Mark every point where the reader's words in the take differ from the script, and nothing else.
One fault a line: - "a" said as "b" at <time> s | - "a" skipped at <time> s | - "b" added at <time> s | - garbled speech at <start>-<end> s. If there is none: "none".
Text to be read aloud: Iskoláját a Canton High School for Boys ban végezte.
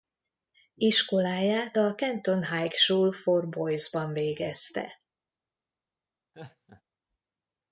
none